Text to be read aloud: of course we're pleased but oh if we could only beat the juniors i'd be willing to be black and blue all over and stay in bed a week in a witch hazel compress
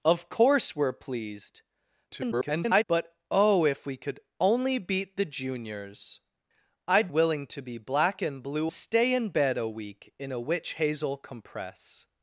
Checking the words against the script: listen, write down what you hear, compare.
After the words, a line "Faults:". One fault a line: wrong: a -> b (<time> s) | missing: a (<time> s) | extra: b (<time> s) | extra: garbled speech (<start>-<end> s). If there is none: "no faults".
of course we're pleased [garbled] but oh if we could only beat the juniors i'd willing to be black and blue stay in bed a week in a witch hazel compress
Faults:
extra: garbled speech (2.1-2.8 s)
missing: be (7.1 s)
missing: all over and (8.7 s)